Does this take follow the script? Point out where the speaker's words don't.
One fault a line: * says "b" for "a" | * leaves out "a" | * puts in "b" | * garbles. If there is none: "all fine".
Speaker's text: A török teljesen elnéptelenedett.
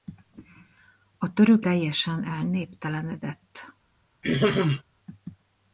all fine